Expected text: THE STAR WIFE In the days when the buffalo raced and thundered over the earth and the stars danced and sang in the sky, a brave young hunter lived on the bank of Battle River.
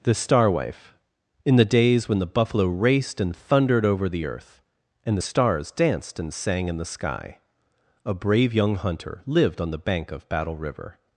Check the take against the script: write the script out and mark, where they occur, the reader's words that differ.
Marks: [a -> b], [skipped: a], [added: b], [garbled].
THE STAR WIFE In the days when the buffalo raced and thundered over the earth and the stars danced and sang in the sky, a brave young hunter lived on the bank of Battle River.